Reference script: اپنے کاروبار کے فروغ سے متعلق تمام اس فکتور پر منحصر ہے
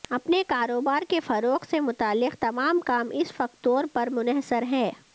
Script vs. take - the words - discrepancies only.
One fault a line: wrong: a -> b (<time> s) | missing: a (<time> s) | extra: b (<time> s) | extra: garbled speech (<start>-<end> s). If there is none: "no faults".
extra: کام (2.8 s)